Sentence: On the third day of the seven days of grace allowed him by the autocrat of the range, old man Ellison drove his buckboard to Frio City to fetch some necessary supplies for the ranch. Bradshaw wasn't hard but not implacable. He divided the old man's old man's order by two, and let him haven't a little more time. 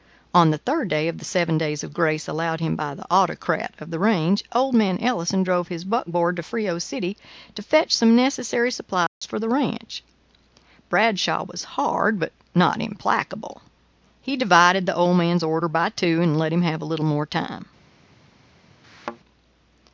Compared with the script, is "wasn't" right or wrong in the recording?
wrong